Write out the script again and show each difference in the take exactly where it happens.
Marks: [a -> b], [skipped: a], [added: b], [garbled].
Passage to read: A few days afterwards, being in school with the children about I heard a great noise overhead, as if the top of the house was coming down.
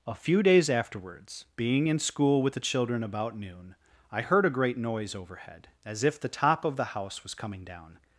A few days afterwards, being in school with the children about [added: noon] I heard a great noise overhead, as if the top of the house was coming down.